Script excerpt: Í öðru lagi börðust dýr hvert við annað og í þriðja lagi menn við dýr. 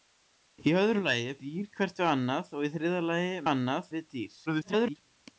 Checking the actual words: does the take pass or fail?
fail